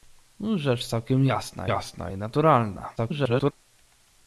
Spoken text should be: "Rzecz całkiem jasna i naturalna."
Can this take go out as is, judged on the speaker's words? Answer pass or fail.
fail